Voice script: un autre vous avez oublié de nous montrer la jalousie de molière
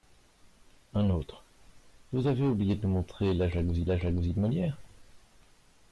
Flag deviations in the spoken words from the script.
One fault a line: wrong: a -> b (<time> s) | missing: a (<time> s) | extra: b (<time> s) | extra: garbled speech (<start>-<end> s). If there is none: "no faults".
extra: la jalousie (3.8 s)